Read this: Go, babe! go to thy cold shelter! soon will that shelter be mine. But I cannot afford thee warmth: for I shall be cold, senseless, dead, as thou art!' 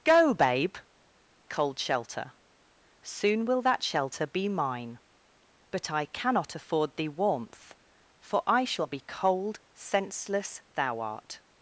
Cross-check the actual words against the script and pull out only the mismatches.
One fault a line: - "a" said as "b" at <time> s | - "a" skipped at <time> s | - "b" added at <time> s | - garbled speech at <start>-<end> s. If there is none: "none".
- "go to thy" skipped at 0.8 s
- "dead as" skipped at 10.6 s